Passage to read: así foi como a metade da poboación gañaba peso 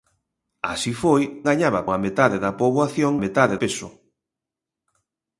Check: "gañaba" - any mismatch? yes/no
yes